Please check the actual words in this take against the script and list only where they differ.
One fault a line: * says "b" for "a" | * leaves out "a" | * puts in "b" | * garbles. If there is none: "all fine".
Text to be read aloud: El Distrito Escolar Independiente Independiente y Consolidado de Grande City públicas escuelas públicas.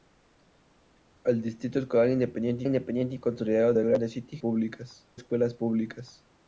all fine